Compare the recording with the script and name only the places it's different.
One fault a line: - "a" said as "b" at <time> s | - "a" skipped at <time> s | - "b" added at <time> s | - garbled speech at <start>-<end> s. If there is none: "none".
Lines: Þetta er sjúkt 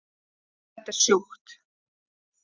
none